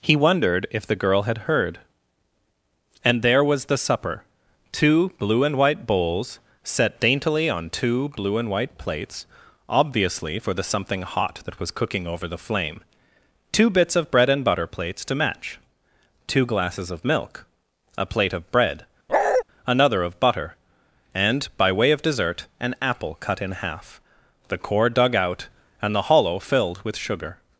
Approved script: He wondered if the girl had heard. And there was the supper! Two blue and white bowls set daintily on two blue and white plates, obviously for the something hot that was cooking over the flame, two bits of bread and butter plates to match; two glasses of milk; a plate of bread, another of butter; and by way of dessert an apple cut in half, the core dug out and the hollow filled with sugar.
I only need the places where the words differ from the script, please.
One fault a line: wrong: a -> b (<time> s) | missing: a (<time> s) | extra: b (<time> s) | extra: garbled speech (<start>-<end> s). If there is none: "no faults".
no faults